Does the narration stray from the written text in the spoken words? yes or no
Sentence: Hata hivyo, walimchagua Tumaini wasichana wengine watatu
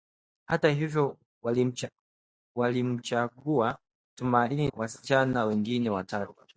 no